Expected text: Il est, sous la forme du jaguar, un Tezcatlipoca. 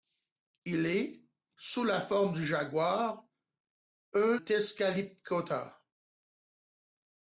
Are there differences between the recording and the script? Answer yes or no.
no